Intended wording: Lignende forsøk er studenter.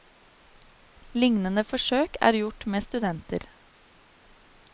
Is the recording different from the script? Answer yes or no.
yes